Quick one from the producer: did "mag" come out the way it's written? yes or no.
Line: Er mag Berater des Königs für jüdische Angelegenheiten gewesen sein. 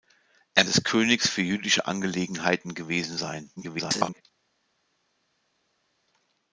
no